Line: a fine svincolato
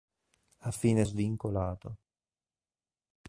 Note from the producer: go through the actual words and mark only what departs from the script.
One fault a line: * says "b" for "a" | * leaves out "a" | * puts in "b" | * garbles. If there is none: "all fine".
all fine